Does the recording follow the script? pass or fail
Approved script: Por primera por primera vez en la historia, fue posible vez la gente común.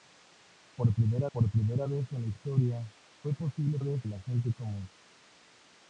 pass